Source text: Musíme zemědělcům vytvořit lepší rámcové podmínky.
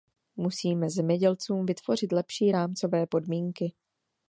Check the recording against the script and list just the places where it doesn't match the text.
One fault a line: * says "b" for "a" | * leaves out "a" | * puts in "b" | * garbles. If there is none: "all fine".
all fine